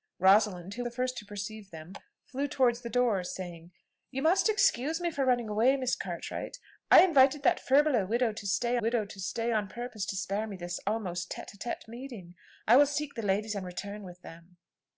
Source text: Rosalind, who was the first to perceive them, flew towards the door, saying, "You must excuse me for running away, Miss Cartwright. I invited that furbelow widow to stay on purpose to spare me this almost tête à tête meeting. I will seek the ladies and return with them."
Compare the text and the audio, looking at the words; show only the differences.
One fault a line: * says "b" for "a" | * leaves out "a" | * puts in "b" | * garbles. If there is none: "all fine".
* leaves out "was"
* puts in "widow to stay"